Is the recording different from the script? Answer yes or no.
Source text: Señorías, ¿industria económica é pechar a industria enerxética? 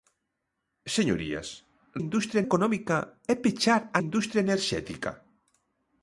no